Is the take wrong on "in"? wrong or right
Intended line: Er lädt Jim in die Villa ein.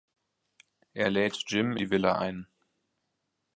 wrong